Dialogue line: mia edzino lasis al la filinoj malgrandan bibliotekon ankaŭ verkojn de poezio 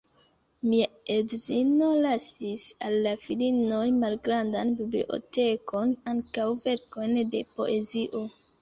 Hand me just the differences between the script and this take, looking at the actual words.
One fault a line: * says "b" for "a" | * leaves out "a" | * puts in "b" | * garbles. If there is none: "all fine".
all fine